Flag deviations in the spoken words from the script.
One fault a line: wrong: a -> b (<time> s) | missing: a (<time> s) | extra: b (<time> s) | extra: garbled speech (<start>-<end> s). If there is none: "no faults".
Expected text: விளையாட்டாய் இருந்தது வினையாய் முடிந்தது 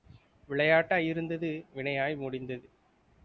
no faults